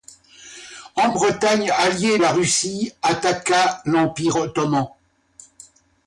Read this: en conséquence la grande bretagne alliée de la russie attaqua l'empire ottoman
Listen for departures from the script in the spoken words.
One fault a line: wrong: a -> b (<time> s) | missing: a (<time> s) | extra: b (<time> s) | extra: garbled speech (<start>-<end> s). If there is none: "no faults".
missing: conséquence la grande (1.1 s)
missing: de (2.2 s)